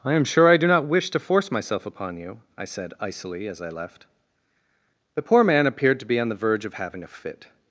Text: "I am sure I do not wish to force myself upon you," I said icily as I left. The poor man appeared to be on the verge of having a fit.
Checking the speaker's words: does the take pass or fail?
pass